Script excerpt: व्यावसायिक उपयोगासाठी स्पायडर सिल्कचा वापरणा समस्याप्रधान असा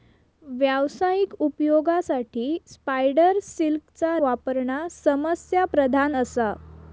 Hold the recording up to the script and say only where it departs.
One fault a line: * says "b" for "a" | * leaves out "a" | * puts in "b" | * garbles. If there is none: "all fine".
all fine